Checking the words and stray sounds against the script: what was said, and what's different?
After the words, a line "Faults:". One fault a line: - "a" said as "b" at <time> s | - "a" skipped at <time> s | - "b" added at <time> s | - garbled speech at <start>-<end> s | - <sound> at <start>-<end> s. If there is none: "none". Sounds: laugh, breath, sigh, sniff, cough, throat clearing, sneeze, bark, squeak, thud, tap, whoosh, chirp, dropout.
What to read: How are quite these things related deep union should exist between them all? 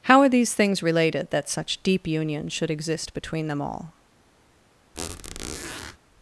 How are these things related that such deep union should exist between them all?
Faults:
- "quite" skipped at 0.3 s
- "that such" added at 1.3 s
- squeak at 4.9-6.0 s